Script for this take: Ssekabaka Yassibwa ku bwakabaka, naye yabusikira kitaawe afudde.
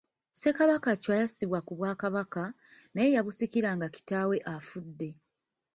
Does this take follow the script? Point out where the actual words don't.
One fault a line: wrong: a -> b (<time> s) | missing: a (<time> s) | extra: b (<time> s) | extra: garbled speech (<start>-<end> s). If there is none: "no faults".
extra: Chwa (1.0 s)
extra: nga (3.8 s)